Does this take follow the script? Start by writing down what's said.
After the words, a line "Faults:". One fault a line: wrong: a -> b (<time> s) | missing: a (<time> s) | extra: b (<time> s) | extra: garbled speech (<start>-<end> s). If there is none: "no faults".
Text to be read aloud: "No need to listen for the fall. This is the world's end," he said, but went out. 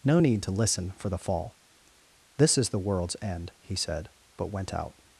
"No need to listen for the fall. This is the world's end," he said, but went out.
Faults:
no faults